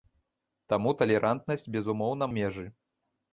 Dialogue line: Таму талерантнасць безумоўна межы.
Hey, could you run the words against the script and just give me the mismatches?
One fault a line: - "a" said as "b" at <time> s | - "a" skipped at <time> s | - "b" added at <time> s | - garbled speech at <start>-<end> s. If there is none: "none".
none